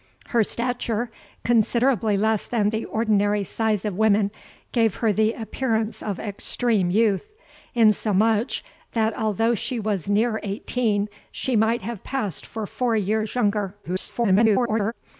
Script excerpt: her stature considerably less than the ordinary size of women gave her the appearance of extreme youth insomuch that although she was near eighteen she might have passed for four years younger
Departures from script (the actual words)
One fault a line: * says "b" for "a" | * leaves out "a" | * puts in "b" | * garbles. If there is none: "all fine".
* garbles